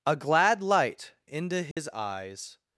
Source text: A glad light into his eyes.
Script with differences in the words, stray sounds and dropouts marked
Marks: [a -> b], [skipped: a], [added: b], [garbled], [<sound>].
A glad light into his [dropout] eyes.